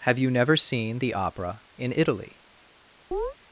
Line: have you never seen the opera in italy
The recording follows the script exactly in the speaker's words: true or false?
true